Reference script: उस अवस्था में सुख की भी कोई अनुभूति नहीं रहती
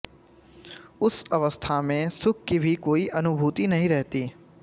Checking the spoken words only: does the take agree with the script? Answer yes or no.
yes